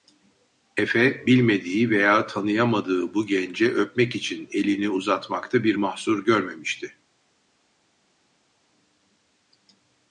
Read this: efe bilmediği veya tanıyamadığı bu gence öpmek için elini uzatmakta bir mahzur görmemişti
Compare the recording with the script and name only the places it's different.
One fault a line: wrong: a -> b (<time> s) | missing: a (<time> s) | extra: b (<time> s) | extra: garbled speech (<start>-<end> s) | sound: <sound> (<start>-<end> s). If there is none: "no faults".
no faults